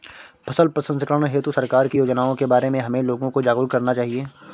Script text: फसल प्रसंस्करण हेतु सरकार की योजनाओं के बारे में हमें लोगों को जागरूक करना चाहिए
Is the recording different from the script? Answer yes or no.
no